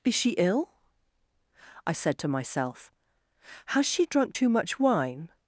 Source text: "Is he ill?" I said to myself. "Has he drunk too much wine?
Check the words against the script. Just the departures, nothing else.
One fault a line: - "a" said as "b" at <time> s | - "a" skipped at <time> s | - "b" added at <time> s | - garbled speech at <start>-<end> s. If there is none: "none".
- "he" said as "she" at 0.1 s
- "he" said as "she" at 3.9 s